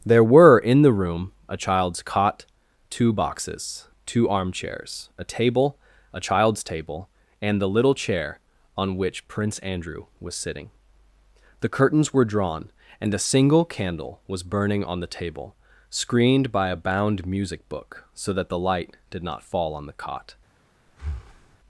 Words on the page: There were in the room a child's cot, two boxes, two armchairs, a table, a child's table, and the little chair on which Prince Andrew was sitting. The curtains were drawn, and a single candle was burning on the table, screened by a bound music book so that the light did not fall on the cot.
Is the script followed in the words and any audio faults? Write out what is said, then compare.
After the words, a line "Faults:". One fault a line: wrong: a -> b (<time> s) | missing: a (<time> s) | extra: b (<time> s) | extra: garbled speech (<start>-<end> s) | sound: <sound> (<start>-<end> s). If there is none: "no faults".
There were in the room a child's cot, two boxes, two armchairs, a table, a child's table, and the little chair on which Prince Andrew was sitting. The curtains were drawn, and a single candle was burning on the table, screened by a bound music book so that the light did not fall on the cot.
Faults:
sound: breath (20.9-21.6 s)